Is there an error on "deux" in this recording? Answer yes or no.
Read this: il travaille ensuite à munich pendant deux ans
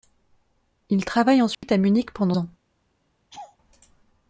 yes